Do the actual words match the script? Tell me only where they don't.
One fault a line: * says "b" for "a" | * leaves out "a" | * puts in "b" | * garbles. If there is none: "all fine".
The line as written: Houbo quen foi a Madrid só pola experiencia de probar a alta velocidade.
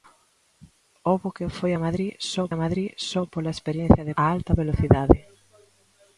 * puts in "a Madrid só"
* leaves out "probar"